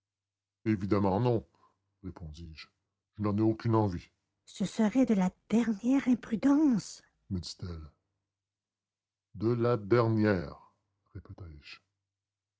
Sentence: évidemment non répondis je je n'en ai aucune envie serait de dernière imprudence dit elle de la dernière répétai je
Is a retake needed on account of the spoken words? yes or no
yes